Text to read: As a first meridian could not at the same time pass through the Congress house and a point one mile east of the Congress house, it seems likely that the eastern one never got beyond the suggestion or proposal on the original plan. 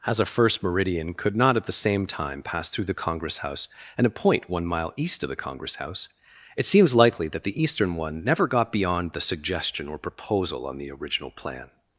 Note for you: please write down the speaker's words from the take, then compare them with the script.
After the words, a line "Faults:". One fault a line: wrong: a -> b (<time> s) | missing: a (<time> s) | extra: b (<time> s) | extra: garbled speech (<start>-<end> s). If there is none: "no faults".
As a first meridian could not at the same time pass through the Congress house and a point one mile east of the Congress house, it seems likely that the eastern one never got beyond the suggestion or proposal on the original plan.
Faults:
no faults